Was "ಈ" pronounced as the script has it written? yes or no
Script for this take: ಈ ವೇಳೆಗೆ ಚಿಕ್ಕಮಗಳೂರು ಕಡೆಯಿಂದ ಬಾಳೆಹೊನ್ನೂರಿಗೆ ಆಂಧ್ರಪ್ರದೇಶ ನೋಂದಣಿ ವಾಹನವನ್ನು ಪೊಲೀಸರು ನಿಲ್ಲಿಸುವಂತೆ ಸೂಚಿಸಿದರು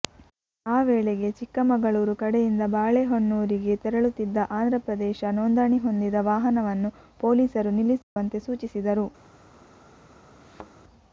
no